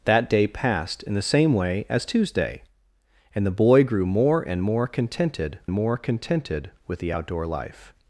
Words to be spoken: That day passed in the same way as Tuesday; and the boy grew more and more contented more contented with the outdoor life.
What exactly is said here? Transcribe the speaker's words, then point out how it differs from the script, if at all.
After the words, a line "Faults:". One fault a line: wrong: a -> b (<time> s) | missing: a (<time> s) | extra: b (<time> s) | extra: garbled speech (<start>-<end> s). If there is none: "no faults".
That day passed in the same way as Tuesday; and the boy grew more and more contented more contented with the outdoor life.
Faults:
no faults